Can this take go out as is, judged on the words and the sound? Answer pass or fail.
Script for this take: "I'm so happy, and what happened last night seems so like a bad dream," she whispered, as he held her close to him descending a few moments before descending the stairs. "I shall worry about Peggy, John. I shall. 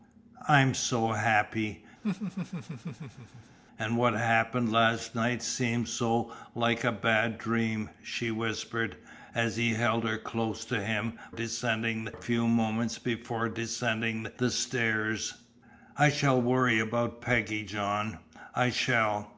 fail